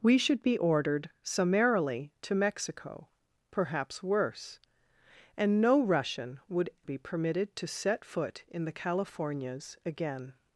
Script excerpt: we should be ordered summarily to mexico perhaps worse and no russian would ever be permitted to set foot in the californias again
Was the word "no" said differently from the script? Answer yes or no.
no